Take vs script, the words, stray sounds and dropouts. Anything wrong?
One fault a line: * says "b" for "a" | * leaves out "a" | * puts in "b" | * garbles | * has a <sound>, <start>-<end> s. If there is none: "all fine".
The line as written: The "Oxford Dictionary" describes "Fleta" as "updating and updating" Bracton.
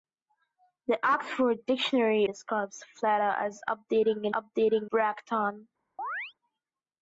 * has a chirp, 6.0-6.3 s